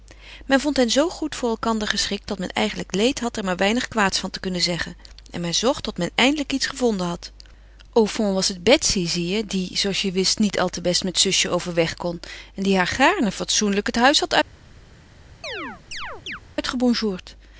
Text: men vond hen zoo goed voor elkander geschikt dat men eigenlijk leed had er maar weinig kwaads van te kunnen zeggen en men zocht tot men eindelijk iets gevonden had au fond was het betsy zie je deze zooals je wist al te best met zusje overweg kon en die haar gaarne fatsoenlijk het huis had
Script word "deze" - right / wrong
wrong